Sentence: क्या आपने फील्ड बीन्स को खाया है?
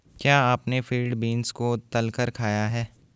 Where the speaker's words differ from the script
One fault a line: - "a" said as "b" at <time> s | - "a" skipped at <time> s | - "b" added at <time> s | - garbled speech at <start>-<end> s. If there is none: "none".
- "तलकर" added at 1.8 s